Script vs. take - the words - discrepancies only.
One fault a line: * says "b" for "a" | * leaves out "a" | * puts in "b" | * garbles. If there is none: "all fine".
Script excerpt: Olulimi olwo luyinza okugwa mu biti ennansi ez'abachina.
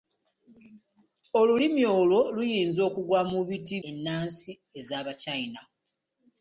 all fine